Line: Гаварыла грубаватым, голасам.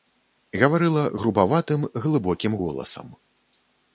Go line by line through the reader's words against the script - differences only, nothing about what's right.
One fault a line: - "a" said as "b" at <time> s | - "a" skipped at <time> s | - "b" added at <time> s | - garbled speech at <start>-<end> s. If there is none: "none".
- "глыбокім" added at 2.1 s